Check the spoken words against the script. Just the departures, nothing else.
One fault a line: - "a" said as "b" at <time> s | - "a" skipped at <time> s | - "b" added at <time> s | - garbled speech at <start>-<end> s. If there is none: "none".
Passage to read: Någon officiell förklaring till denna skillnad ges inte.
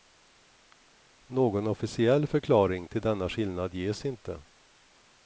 none